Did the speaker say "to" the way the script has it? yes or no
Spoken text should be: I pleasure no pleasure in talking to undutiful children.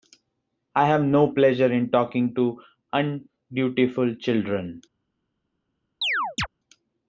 yes